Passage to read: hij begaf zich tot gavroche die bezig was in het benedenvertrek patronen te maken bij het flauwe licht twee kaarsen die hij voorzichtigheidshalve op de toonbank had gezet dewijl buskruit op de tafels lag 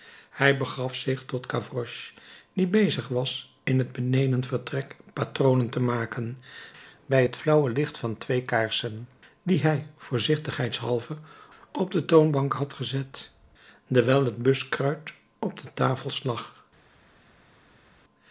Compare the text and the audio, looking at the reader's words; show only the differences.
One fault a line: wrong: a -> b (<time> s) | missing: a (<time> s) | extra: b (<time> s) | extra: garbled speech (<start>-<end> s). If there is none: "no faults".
extra: van (8.0 s)
extra: het (14.3 s)